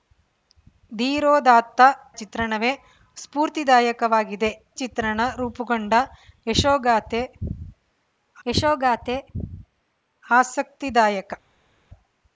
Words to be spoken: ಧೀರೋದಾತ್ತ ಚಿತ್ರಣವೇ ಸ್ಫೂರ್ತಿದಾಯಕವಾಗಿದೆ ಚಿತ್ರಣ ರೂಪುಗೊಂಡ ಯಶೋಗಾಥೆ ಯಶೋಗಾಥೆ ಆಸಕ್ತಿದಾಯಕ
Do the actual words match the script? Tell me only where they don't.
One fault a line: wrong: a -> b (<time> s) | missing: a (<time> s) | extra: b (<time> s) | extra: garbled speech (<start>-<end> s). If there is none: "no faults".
no faults